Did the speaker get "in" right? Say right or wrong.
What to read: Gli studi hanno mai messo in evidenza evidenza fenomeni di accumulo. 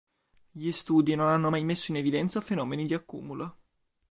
right